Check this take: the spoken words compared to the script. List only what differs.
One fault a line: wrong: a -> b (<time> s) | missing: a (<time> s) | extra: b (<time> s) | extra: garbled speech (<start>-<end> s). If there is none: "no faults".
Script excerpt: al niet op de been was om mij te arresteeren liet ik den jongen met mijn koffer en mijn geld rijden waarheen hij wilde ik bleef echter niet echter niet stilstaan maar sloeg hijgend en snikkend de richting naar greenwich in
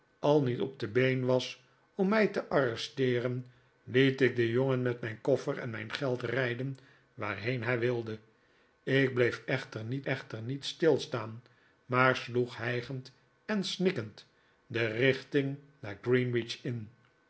no faults